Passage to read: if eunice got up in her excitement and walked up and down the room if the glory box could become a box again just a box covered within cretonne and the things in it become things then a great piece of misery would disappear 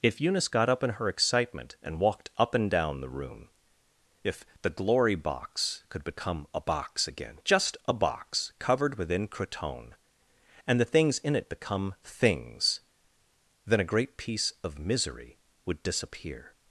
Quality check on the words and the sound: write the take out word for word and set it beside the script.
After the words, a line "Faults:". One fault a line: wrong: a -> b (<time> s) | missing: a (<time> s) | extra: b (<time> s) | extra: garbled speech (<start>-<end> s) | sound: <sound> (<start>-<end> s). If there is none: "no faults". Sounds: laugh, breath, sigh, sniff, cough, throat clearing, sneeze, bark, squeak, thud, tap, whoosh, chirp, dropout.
if eunice got up in her excitement and walked up and down the room if the glory box could become a box again just a box covered within cretonne and the things in it become things then a great piece of misery would disappear
Faults:
no faults